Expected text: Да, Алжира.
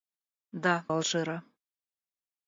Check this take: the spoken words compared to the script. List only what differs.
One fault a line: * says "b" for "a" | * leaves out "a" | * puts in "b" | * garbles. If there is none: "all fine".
all fine